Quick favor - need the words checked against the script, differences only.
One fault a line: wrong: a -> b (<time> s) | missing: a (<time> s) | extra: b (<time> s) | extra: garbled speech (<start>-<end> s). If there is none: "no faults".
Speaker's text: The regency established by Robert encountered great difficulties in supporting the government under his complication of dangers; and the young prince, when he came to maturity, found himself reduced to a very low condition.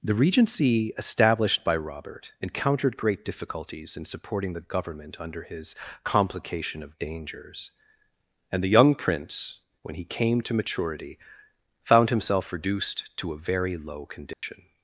no faults